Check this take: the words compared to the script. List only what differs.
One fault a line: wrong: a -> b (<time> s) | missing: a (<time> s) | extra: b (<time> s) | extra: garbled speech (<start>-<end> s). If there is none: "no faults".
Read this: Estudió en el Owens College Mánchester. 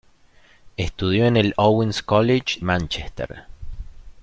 no faults